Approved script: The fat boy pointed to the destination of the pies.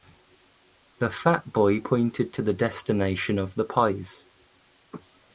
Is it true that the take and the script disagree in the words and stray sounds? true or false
false